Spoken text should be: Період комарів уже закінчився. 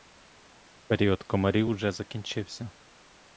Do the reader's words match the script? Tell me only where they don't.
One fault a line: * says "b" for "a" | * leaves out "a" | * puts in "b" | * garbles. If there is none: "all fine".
all fine